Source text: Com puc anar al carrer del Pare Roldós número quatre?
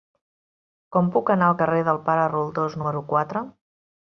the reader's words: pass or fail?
pass